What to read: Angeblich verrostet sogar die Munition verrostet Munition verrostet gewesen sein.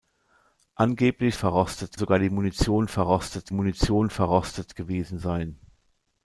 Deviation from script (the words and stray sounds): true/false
false